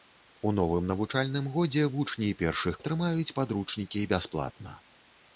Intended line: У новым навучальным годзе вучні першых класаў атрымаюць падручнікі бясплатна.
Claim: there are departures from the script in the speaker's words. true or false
true